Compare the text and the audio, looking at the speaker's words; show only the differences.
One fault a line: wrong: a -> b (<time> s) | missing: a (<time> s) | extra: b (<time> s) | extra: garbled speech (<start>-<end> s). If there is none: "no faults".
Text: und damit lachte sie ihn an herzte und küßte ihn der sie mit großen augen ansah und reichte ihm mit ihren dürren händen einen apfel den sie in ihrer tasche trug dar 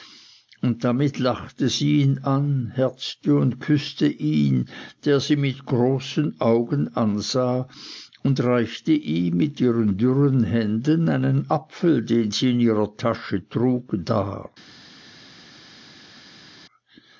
no faults